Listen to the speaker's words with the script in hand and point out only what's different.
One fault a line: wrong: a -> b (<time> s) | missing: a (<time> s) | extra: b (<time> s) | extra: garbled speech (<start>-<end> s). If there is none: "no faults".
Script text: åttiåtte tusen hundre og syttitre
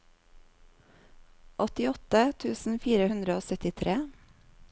extra: fire (2.9 s)